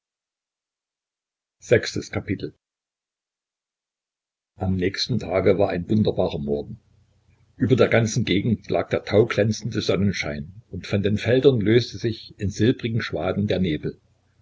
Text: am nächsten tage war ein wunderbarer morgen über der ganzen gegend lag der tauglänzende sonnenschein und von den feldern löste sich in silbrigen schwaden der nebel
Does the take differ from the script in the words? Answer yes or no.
no